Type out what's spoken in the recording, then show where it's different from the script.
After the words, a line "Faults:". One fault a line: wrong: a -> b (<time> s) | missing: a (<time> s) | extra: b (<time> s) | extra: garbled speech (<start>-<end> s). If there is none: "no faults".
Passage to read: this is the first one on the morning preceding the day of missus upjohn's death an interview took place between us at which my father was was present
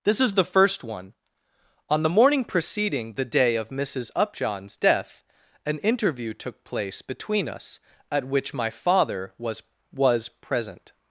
this is the first one on the morning preceding the day of missus upjohn's death an interview took place between us at which my father was was present
Faults:
no faults